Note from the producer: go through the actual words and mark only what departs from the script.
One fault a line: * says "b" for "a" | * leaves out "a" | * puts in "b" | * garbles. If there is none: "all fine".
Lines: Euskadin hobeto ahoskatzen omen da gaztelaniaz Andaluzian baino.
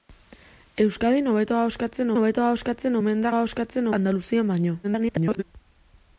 * puts in "hobeto ahoskatzen"
* says "ahoskatzen" for "gaztelaniaz"
* garbles